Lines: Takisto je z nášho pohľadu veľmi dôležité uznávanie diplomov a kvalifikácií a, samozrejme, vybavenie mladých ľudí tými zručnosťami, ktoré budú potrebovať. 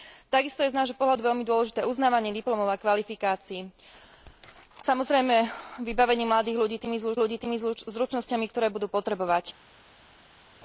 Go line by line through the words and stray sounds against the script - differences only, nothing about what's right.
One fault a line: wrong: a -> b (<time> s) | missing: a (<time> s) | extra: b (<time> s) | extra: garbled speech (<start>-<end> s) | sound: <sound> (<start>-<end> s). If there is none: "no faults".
missing: a (3.7 s)
extra: ľudí tými (7.2 s)